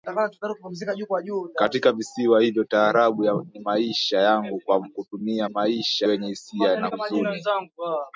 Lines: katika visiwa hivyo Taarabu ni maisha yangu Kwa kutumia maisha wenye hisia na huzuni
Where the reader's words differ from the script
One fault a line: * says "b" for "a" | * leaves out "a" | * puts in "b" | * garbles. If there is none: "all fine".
all fine